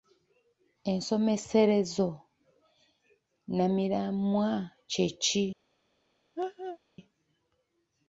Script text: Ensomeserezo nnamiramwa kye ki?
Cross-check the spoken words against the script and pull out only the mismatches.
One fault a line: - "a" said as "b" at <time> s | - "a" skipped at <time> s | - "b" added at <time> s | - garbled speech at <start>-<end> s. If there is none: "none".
none